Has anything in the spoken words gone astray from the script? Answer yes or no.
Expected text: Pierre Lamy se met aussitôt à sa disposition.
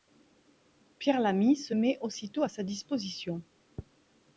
no